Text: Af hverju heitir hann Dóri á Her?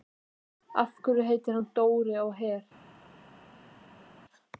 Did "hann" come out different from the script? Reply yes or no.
no